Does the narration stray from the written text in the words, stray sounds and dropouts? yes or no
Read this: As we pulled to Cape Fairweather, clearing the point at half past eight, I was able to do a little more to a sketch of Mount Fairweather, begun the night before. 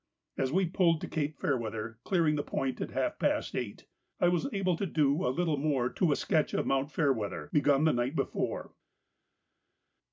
no